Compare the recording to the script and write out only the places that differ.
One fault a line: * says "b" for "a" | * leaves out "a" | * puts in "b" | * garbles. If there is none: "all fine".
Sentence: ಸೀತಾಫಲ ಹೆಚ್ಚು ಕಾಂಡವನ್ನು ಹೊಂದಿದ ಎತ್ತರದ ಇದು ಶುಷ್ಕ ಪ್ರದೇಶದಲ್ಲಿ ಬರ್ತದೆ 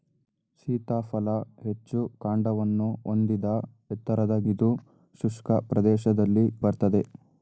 all fine